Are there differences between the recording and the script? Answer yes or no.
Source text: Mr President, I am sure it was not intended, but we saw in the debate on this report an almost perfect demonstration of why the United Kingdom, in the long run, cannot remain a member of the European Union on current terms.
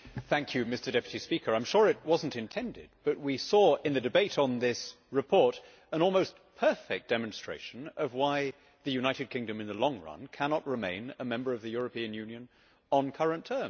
no